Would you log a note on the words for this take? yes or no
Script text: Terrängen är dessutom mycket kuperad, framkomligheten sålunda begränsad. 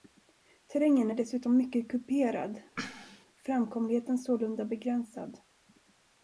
no